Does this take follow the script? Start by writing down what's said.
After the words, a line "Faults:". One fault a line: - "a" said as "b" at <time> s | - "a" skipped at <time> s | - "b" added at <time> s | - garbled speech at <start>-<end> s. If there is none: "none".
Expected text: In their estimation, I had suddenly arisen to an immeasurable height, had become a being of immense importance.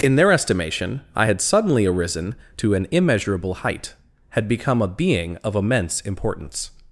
In their estimation, I had suddenly arisen to an immeasurable height, had become a being of immense importance.
Faults:
none